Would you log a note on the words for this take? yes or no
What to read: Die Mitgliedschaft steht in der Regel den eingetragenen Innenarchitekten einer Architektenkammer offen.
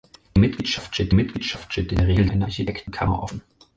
yes